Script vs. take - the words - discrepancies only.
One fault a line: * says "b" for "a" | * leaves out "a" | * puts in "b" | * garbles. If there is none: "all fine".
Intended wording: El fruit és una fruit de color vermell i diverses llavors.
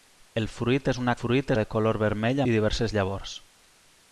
all fine